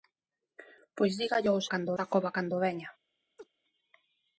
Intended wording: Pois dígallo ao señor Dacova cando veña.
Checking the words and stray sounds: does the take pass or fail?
fail